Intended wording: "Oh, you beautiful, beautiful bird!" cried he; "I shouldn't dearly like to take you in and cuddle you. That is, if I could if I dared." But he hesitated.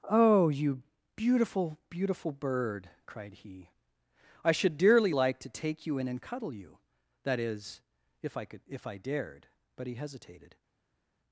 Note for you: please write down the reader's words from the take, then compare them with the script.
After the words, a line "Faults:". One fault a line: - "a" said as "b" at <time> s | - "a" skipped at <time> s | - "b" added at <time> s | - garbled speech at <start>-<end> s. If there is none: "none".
"Oh, you beautiful, beautiful bird!" cried he; "I should dearly like to take you in and cuddle you. That is, if I could if I dared." But he hesitated.
Faults:
- "shouldn't" said as "should" at 4.5 s